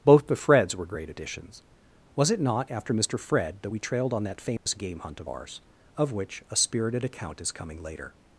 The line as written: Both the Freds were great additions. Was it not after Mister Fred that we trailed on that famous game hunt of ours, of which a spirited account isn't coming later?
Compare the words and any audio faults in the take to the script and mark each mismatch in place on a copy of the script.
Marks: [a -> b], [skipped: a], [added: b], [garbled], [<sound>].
Both the Freds were great additions. Was it not after Mister Fred that we trailed on that famous [dropout] game hunt of ours, of which a spirited account [isn't -> is] coming later?